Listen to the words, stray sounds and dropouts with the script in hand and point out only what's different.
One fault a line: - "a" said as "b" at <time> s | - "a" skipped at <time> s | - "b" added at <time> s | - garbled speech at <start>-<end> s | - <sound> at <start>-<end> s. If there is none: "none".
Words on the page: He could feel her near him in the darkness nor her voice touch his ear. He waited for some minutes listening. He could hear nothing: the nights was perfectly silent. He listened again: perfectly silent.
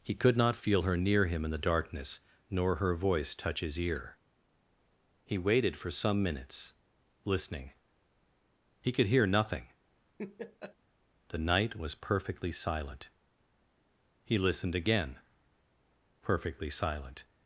- "not" added at 0.3 s
- laugh at 10.2-10.8 s
- "nights" said as "night" at 11.4 s